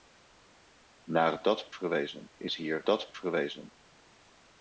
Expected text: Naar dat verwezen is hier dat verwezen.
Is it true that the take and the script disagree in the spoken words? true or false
false